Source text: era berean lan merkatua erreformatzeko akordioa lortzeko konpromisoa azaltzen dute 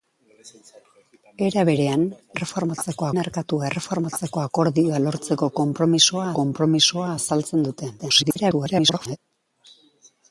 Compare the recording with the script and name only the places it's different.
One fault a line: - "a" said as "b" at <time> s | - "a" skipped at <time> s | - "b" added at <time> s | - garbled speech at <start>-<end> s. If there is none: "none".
- "lan" said as "erreformatzeko" at 2.4 s
- "konpromisoa" added at 6.4 s
- garbled speech at 8.0-9.2 s